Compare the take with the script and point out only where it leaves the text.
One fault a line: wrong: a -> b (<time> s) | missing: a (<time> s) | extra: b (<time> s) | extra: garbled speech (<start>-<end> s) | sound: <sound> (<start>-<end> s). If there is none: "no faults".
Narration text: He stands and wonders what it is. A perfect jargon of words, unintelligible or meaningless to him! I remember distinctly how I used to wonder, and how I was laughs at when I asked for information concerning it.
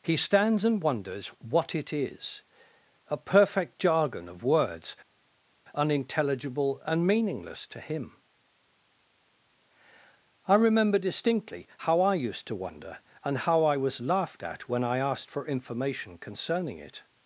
wrong: or -> and (6.8 s)
wrong: laughs -> laughed (14.0 s)